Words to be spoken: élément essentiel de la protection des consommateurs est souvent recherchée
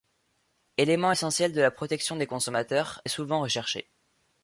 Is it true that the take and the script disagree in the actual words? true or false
false